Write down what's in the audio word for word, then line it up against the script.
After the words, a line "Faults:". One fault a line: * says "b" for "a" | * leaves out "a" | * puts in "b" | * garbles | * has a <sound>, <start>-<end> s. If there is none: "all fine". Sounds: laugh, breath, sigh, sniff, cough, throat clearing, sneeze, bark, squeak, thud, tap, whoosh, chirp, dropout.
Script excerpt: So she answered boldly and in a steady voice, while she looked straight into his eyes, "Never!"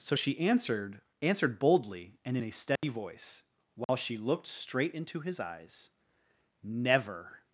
So she answered answered boldly and in a steady voice, while she looked straight into his eyes, "Never!"
Faults:
* puts in "answered"
* has a dropout, 2.8-2.8 s
* has a dropout, 3.8-3.9 s